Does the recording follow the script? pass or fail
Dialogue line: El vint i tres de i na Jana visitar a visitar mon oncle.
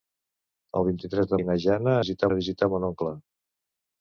pass